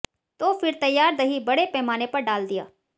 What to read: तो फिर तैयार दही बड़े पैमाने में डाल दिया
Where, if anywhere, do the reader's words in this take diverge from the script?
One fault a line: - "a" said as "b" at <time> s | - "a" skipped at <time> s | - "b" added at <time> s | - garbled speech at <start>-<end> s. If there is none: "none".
- "में" said as "पर" at 2.1 s